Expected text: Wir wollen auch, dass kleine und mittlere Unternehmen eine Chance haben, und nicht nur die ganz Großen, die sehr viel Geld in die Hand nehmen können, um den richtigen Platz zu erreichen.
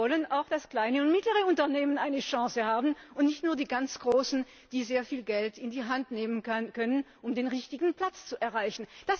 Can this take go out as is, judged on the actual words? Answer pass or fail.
pass